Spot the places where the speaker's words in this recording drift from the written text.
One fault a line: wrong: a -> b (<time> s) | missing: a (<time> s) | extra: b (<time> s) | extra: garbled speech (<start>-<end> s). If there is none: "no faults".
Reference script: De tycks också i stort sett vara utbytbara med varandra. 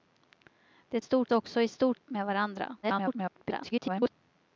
wrong: tycks -> stort (1.0 s)
missing: sett vara utbytbara (2.0 s)
extra: garbled speech (2.8-4.1 s)